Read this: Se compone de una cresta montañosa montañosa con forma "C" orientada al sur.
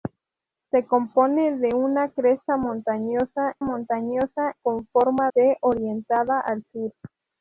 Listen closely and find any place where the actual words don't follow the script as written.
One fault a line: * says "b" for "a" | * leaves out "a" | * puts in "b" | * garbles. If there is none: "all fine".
all fine